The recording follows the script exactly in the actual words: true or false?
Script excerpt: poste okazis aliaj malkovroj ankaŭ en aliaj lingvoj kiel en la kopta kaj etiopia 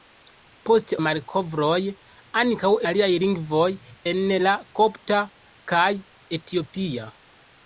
false